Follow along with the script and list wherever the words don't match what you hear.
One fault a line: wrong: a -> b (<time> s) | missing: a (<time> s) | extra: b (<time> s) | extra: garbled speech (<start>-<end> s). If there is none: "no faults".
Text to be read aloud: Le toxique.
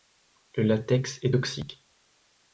extra: latex est (0.6 s)